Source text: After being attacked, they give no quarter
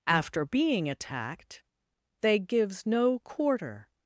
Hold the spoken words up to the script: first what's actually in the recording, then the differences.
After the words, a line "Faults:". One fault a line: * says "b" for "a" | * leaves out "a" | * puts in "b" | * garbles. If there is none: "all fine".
After being attacked, they gives no quarter
Faults:
* says "gives" for "give"